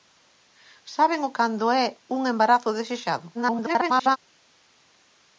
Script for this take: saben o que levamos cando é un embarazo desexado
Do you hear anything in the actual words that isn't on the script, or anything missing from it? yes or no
yes